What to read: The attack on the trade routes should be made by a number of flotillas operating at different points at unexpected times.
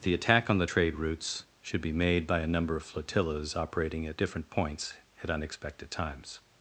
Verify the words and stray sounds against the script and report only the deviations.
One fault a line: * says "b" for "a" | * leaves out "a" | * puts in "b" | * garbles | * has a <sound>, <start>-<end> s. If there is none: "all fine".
all fine